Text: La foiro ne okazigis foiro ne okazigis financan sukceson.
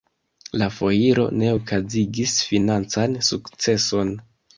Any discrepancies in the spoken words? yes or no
yes